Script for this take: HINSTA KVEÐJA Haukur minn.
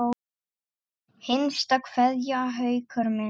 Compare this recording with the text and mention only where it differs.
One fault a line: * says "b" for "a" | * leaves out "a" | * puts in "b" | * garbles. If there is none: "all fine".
all fine